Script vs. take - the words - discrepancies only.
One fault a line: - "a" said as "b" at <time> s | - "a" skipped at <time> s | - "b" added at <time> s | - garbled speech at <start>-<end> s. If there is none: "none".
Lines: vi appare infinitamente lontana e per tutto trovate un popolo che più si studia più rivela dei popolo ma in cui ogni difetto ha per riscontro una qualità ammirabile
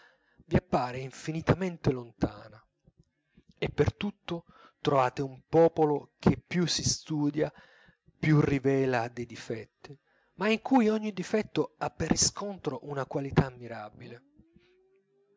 - "popolo" said as "difetti" at 9.3 s